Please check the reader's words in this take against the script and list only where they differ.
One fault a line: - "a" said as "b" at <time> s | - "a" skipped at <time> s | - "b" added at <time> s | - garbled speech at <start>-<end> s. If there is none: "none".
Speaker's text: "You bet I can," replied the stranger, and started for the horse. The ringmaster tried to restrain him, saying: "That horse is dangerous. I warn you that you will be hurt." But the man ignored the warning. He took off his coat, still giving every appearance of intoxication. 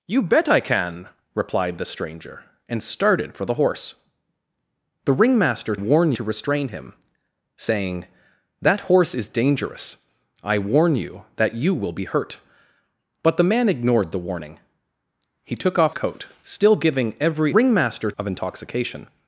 - "tried" said as "warn" at 5.7 s
- "his" skipped at 16.0 s
- "appearance" said as "ringmaster" at 17.5 s